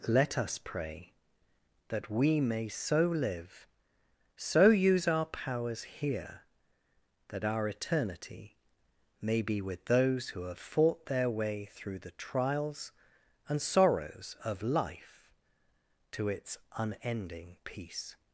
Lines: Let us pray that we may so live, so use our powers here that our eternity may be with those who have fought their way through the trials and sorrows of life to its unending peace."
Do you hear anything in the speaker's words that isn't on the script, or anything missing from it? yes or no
no